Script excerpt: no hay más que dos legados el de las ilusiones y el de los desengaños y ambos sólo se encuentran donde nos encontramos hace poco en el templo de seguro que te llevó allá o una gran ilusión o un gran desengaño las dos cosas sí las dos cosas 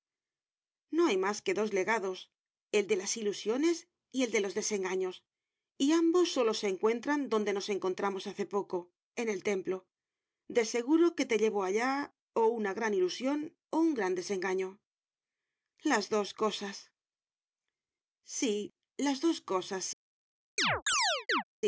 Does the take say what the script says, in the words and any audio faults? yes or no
no